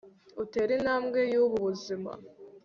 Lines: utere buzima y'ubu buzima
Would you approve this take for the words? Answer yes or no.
no